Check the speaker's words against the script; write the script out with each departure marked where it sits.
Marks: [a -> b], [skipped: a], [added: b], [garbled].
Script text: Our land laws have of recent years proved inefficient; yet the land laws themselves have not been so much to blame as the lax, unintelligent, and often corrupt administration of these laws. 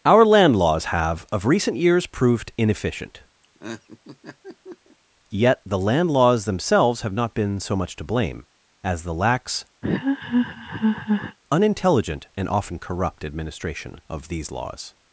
Our land laws have of recent years proved inefficient; yet the land laws themselves have not been so much to blame as the lax, unintelligent, and often corrupt administration of these laws.